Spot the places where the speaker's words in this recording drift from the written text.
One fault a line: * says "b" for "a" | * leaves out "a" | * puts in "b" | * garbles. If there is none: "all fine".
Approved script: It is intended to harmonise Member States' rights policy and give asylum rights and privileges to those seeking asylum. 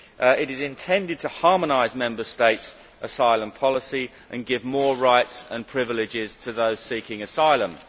* says "asylum" for "rights"
* says "more" for "asylum"